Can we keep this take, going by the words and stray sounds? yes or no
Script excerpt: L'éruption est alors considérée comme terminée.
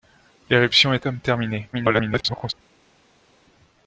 no